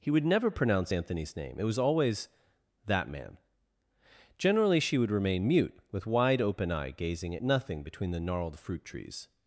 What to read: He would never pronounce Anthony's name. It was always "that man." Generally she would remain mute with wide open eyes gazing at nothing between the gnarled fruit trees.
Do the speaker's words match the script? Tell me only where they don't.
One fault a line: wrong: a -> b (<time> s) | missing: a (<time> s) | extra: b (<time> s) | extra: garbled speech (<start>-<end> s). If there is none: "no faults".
wrong: eyes -> eye (6.7 s)